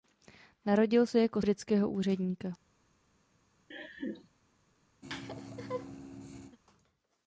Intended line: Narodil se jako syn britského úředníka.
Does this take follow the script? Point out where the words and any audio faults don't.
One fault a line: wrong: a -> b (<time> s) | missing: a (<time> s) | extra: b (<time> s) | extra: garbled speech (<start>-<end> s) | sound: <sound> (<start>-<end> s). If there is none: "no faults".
missing: syn (1.4 s)
sound: laugh (3.7-4.3 s)
sound: laugh (5.0-6.6 s)